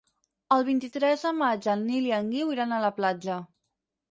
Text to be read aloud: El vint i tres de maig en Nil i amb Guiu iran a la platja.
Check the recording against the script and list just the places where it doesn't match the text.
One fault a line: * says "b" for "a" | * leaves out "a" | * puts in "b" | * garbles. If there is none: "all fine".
* says "en" for "amb"